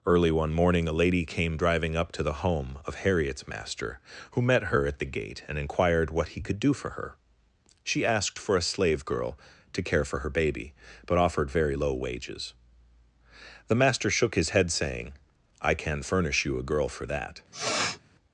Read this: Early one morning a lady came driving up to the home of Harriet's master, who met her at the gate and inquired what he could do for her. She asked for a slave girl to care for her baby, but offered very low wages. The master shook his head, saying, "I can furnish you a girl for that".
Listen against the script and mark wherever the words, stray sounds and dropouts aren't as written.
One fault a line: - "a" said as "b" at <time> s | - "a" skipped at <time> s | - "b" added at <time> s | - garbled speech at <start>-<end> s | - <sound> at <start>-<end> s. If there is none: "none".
- sniff at 17.5-18.0 s